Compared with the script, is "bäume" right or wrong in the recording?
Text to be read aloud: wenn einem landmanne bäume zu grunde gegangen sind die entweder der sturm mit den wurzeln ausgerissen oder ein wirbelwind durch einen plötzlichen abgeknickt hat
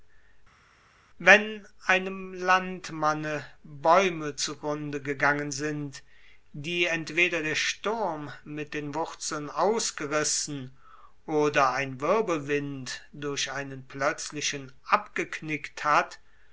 right